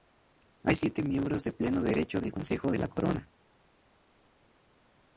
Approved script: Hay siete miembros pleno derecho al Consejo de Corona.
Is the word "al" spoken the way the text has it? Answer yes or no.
no